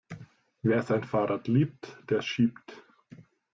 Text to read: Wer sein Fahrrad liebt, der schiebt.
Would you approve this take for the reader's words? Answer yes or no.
yes